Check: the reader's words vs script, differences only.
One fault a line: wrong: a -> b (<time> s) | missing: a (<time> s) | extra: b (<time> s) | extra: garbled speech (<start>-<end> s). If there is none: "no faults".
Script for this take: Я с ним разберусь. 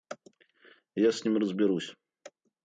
no faults